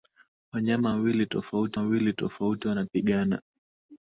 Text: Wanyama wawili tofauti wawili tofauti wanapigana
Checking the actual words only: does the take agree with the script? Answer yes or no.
yes